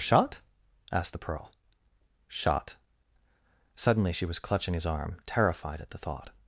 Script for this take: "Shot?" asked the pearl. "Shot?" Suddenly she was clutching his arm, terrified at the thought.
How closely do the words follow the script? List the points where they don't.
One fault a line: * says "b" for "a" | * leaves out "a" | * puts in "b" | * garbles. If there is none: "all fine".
all fine